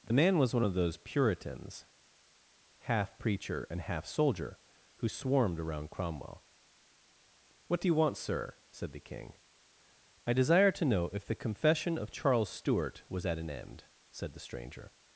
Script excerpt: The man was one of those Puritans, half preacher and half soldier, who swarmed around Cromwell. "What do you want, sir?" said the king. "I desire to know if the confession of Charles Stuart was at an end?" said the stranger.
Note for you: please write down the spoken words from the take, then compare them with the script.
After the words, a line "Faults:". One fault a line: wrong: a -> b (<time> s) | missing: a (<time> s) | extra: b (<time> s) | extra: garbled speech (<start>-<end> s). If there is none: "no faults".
The man was one of those Puritans, half preacher and half soldier, who swarmed around Cromwell. "What do you want, sir?" said the king. "I desire to know if the confession of Charles Stuart was at an end?" said the stranger.
Faults:
no faults